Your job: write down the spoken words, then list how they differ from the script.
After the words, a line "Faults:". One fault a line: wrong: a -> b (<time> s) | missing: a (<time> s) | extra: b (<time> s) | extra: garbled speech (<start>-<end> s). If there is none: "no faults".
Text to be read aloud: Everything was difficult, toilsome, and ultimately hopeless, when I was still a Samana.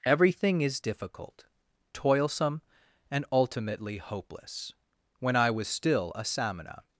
Everything is difficult, toilsome, and ultimately hopeless, when I was still a Samana.
Faults:
wrong: was -> is (0.6 s)